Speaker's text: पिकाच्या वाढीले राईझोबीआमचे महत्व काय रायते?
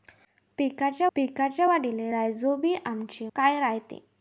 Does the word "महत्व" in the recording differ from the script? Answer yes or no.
yes